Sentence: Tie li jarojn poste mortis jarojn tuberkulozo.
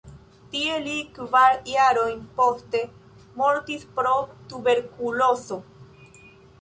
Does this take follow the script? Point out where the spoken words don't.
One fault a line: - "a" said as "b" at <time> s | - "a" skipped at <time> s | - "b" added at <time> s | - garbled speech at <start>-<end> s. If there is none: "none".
- "kvar" added at 1.2 s
- "jarojn" said as "pro" at 4.0 s